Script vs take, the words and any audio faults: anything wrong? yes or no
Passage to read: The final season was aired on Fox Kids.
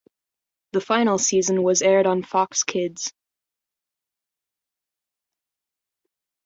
no